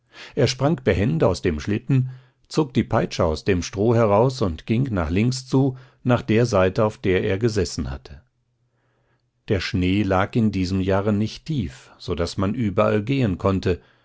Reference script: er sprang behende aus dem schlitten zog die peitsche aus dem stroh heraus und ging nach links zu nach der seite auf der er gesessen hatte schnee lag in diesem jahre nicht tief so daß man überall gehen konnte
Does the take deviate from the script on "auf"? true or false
false